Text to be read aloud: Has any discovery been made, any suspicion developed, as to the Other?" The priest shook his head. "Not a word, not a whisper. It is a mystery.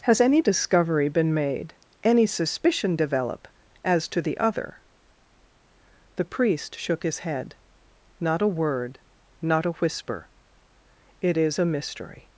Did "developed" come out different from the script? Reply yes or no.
yes